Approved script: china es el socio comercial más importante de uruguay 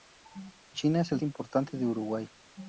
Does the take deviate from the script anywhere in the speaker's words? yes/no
yes